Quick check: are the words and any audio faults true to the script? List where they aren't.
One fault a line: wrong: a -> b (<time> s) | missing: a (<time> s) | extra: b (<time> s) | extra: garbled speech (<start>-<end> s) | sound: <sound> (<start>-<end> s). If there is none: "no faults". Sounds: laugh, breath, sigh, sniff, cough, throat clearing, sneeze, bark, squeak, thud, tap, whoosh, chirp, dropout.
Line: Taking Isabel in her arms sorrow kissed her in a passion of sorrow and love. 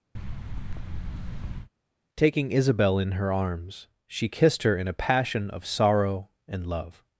sound: thud (0.1-1.7 s)
wrong: sorrow -> she (4.0 s)